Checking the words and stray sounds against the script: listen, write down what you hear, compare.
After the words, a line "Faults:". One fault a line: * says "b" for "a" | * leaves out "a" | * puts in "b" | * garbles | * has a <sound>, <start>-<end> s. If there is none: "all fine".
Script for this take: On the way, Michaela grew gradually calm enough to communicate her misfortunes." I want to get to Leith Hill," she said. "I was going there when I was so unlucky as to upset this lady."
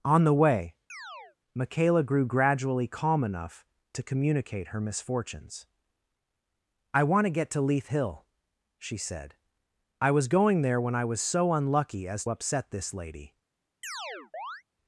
On the way, Michaela grew gradually calm enough to communicate her misfortunes." I want to get to Leith Hill," she said. "I was going there when I was so unlucky as upset this lady."
Faults:
* has a chirp, 0.9-1.4 s
* leaves out "to"
* has a chirp, 13.8-14.6 s